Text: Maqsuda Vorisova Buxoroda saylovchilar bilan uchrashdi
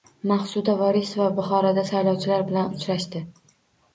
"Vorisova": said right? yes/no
yes